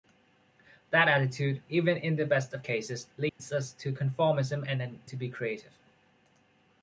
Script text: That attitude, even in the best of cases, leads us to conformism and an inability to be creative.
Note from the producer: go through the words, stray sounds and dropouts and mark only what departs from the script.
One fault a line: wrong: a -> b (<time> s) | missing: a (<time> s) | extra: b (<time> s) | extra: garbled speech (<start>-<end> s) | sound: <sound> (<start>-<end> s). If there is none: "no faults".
sound: dropout (3.3-3.4 s)
missing: inability (5.0 s)